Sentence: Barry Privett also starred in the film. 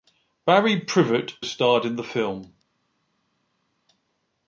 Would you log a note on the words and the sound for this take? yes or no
yes